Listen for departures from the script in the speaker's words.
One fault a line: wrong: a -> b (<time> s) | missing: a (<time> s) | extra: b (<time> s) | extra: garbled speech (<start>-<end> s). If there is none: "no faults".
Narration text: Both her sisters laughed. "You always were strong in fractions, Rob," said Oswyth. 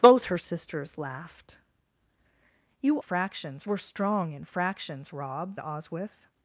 wrong: always -> fractions (3.0 s)
missing: said (5.6 s)